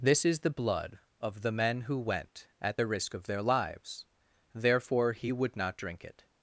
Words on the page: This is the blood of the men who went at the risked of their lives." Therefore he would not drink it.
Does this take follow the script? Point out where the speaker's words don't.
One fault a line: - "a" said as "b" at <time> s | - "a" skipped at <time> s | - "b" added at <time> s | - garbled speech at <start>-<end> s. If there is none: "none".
- "risked" said as "risk" at 2.9 s